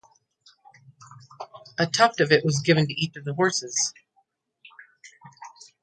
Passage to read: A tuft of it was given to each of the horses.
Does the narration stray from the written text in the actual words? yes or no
no